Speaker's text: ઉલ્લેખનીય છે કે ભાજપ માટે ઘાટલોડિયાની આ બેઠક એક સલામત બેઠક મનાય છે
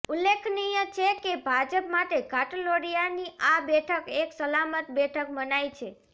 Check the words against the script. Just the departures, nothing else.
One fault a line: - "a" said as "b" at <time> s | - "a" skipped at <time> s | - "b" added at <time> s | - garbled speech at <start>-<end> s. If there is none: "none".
none